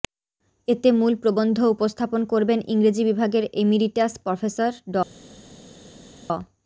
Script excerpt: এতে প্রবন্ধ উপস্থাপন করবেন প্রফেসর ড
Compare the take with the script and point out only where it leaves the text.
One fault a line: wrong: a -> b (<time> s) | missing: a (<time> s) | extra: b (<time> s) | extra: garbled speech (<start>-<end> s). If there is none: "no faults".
extra: মূল (0.9 s)
extra: ইংরেজি বিভাগের এমিরিটাস (2.7 s)